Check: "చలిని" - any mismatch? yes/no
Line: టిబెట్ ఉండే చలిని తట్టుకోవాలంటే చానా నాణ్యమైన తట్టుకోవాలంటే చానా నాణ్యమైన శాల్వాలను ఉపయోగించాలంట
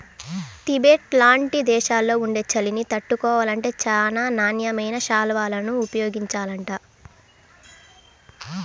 no